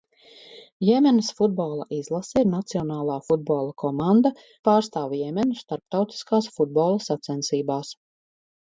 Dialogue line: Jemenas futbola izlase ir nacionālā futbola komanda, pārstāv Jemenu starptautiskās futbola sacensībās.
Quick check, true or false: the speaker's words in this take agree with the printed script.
true